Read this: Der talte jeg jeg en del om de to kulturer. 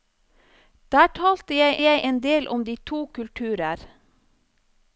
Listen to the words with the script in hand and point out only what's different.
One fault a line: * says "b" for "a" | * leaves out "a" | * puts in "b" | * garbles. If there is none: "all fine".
all fine